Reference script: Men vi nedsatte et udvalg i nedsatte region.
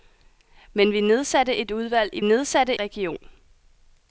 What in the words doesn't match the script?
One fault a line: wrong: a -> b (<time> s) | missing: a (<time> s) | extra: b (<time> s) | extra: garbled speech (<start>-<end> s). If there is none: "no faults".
no faults